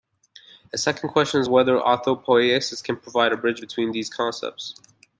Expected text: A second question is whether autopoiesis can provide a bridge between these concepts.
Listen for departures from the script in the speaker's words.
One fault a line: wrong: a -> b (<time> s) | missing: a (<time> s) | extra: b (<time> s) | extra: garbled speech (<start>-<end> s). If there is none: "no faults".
no faults